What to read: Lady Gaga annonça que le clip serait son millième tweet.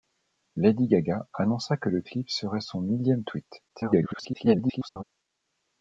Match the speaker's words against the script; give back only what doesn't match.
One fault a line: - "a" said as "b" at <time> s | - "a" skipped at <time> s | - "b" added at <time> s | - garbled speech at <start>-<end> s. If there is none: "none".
- garbled speech at 3.7-5.0 s